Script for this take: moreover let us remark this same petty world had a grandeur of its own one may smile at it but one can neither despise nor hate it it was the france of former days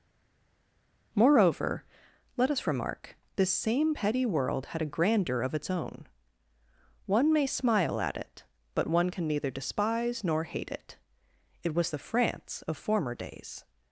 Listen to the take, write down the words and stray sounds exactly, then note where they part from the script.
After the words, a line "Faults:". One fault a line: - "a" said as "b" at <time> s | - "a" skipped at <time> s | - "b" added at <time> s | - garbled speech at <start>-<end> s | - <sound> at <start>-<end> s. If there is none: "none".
moreover let us remark this same petty world had a grandeur of its own one may smile at it but one can neither despise nor hate it it was the france of former days
Faults:
none